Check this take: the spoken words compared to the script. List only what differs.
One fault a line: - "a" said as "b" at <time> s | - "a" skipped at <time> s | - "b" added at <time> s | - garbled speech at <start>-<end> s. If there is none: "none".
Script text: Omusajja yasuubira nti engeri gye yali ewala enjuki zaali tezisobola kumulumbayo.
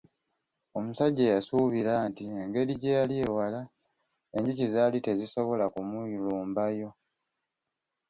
none